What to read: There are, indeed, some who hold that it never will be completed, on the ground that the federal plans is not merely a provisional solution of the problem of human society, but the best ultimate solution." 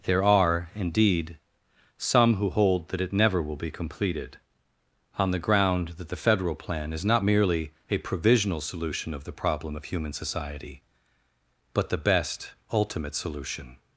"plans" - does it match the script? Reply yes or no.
no